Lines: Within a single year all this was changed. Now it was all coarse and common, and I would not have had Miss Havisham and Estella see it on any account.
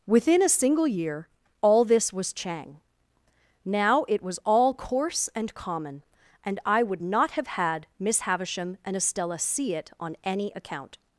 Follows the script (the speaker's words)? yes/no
no